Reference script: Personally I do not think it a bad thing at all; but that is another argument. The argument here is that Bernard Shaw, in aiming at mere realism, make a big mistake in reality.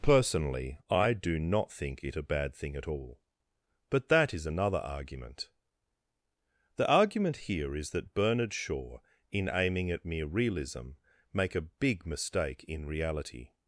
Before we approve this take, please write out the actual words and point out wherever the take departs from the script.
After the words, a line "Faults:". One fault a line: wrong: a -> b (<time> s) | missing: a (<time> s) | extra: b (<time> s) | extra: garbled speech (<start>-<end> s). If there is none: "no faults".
Personally I do not think it a bad thing at all; but that is another argument. The argument here is that Bernard Shaw, in aiming at mere realism, make a big mistake in reality.
Faults:
no faults